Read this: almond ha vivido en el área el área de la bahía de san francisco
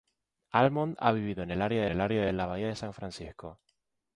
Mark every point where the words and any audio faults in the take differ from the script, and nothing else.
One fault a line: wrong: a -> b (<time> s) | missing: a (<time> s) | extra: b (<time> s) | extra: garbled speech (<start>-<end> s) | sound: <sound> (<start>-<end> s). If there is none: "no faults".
no faults